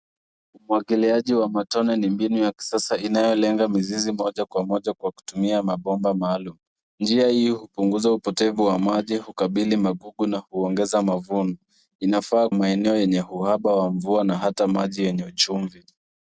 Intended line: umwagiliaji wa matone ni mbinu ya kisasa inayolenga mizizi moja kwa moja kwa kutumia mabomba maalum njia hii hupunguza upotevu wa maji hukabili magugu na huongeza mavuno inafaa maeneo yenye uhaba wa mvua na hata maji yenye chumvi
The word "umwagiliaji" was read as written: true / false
true